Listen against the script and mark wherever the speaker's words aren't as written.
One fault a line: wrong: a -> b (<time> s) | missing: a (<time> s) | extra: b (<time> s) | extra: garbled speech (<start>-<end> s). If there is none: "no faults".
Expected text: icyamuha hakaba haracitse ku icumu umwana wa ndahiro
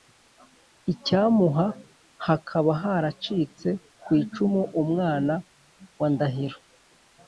no faults